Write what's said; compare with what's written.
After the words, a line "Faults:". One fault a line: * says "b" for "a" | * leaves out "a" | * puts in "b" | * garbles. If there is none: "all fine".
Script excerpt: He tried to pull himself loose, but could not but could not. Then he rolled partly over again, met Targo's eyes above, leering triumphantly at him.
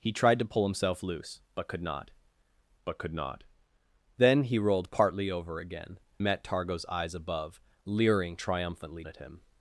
He tried to pull himself loose, but could not but could not. Then he rolled partly over again, met Targo's eyes above, leering triumphantly at him.
Faults:
all fine